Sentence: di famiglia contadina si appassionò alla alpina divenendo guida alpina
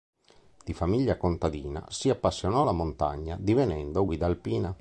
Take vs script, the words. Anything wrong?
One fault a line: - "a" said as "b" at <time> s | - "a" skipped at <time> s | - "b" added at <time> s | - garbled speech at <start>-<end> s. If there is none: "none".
- "alpina" said as "montagna" at 2.7 s